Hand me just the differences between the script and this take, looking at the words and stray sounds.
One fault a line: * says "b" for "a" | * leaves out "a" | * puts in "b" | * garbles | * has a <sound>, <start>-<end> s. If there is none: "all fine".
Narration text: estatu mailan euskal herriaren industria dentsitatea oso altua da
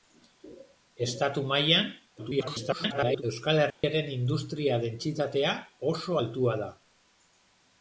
* garbles
* has a dropout, 3.7-3.8 s